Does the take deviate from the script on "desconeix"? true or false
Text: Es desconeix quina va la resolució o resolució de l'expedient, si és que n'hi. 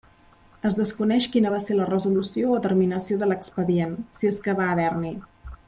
false